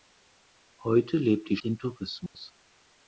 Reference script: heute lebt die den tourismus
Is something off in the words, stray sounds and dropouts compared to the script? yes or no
yes